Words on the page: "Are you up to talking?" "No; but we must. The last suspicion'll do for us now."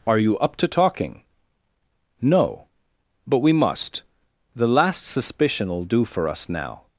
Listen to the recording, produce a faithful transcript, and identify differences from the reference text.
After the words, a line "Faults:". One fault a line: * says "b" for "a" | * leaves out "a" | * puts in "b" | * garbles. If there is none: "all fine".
"Are you up to talking?" "No; but we must. The last suspicion'll do for us now."
Faults:
all fine